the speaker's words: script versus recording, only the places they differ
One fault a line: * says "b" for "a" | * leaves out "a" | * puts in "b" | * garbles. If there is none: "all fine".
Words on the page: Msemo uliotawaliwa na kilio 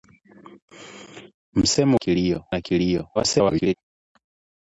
* says "kilio" for "uliotawaliwa"
* garbles